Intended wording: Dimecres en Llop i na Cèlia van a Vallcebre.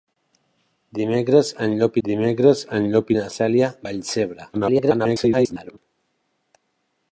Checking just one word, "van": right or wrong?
wrong